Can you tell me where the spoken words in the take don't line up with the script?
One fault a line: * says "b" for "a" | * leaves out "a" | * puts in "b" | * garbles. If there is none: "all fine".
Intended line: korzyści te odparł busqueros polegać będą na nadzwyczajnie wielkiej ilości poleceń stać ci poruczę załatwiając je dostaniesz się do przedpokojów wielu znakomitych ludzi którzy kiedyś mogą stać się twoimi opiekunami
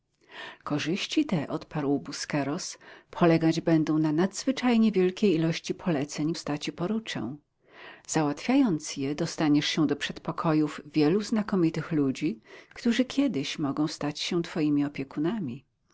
all fine